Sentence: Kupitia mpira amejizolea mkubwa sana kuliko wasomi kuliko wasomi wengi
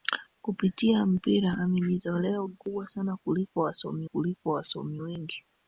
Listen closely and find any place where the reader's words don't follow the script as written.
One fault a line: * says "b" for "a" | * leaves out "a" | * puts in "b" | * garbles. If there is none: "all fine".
all fine